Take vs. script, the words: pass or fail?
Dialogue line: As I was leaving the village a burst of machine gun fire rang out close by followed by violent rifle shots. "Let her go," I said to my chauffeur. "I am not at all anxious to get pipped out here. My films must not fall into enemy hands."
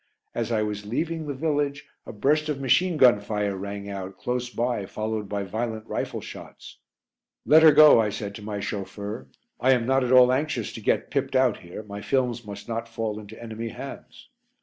pass